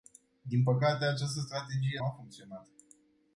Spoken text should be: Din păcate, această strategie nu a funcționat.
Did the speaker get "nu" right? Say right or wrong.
wrong